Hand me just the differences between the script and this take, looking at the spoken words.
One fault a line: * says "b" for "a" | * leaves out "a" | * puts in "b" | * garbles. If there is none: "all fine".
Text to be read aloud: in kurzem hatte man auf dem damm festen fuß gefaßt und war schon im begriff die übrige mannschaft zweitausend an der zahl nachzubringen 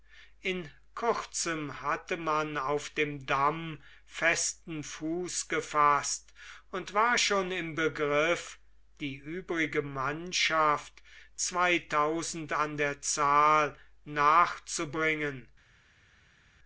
all fine